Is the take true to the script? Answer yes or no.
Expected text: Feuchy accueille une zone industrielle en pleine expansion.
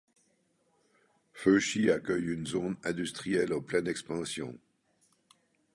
yes